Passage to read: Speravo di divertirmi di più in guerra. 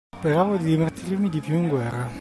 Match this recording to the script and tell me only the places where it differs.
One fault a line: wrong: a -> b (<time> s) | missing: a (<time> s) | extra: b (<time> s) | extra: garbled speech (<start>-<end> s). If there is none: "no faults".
no faults